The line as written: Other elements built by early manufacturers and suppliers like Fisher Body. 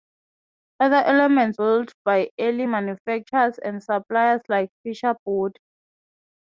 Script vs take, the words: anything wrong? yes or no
no